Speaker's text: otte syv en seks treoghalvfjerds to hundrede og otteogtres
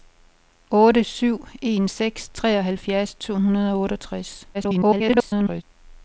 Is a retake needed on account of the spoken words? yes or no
yes